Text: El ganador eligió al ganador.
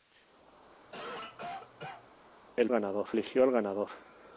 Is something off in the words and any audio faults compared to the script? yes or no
yes